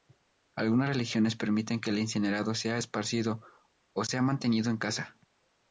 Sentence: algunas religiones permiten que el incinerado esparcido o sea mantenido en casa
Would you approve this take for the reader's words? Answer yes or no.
no